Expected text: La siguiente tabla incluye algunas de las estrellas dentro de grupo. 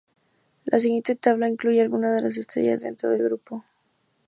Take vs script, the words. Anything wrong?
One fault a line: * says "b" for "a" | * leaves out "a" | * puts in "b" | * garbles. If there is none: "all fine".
all fine